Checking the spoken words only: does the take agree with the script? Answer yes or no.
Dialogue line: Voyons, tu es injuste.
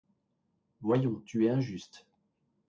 yes